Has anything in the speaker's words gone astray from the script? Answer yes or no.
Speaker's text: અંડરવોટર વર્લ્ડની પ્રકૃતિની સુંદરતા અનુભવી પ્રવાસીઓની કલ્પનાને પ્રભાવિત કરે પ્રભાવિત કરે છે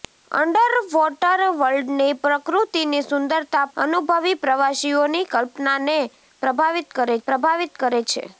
no